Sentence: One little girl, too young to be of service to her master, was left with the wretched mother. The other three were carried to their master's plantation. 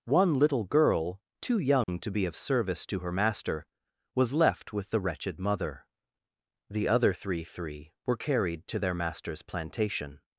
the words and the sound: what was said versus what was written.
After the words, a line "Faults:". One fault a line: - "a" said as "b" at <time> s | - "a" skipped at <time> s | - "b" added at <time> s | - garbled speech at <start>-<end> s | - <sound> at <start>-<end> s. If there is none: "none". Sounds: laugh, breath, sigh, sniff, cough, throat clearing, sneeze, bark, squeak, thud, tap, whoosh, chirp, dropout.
One little girl, too young to be of service to her master, was left with the wretched mother. The other three three were carried to their master's plantation.
Faults:
- dropout at 1.8-1.9 s
- "three" added at 7.4 s